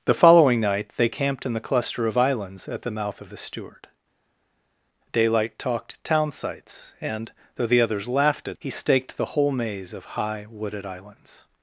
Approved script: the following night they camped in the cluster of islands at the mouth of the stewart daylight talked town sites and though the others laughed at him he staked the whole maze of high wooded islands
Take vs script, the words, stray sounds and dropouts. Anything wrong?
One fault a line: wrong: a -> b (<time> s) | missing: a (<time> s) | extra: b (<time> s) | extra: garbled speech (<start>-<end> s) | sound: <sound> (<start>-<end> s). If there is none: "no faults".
missing: him (8.6 s)